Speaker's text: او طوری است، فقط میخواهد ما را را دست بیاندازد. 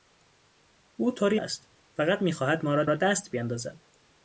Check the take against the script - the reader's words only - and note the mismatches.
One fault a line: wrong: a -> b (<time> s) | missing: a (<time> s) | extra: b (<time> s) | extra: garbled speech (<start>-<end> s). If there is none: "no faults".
no faults